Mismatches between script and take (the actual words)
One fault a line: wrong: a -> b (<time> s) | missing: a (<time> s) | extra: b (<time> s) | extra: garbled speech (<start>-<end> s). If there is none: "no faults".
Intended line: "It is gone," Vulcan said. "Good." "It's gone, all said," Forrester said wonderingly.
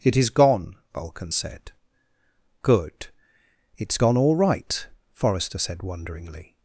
wrong: said -> right (4.4 s)